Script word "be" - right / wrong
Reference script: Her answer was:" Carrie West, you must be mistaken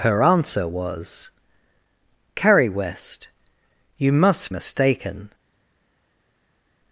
wrong